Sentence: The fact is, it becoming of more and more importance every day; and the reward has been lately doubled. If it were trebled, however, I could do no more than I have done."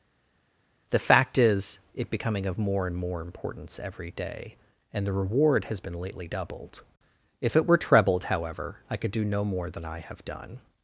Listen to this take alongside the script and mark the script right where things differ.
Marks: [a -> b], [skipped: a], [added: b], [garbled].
The fact is, it becoming of more and more importance every day; and the reward has been lately doubled. If it were trebled, however, I could do no more than I have done."